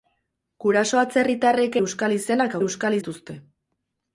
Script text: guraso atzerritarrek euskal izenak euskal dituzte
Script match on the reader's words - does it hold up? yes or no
yes